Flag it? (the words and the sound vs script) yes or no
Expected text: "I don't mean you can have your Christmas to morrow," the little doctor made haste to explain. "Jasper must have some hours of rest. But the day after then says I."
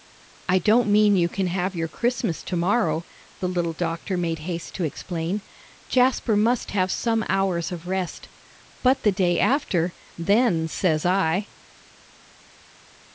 no